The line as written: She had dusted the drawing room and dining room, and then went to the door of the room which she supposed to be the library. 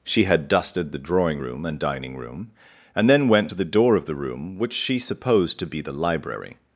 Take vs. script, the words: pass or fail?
pass